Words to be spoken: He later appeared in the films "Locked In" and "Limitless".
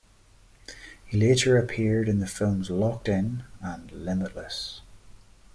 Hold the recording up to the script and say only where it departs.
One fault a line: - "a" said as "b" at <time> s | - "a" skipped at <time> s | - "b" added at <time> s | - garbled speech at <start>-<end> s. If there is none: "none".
none